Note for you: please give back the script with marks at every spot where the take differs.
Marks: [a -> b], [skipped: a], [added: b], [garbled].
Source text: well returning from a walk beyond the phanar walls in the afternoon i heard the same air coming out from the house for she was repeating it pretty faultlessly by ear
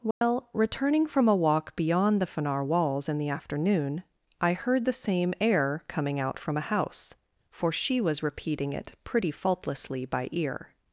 well returning from a walk beyond the phanar walls in the afternoon i heard the same air coming out from [the -> a] house for she was repeating it pretty faultlessly by ear